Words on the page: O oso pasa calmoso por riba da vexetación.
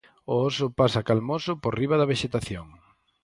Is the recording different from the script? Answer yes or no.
no